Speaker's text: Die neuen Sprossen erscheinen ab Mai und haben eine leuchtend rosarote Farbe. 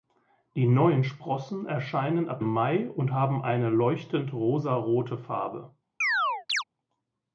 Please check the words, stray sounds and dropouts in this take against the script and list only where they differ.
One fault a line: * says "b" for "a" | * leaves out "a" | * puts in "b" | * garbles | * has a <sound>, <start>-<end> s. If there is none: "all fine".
* has a chirp, 6.0-6.6 s